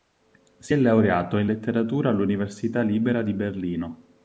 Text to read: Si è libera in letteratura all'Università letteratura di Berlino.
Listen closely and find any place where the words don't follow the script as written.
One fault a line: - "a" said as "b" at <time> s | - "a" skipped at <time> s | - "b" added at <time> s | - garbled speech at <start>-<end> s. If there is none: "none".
- "libera" said as "laureato" at 0.8 s
- "letteratura" said as "libera" at 2.8 s